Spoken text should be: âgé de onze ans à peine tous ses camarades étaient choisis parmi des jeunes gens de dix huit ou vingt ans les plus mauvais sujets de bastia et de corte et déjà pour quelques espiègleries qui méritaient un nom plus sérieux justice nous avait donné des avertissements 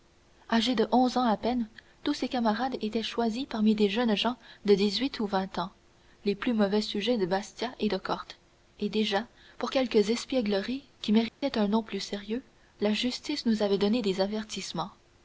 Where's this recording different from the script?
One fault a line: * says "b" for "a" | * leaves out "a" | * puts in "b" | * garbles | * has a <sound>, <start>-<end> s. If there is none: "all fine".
* has a dropout, 11.3-11.4 s
* puts in "la"